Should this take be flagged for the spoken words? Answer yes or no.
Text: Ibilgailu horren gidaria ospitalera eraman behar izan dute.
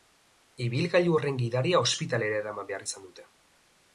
no